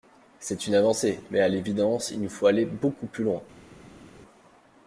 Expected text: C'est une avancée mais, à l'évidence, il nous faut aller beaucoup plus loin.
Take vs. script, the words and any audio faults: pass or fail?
pass